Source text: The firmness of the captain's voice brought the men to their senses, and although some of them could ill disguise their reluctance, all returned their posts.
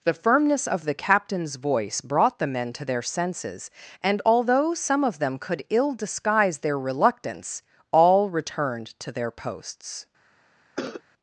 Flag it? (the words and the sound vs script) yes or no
yes